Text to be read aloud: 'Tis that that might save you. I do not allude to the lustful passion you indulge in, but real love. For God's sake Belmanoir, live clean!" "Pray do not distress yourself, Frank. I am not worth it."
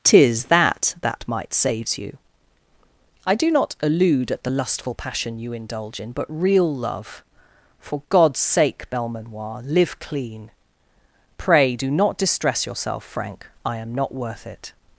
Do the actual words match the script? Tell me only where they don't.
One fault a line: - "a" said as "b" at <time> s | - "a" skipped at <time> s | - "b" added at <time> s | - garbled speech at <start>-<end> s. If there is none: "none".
- "save" said as "saves" at 1.5 s
- "to" said as "at" at 4.3 s